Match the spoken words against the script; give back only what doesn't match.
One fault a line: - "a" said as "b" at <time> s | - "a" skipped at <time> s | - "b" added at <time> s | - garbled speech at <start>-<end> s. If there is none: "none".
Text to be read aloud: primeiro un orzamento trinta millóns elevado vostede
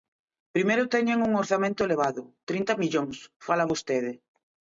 - "teñen" added at 0.9 s
- "elevado" added at 1.9 s
- "elevado" said as "fala" at 3.5 s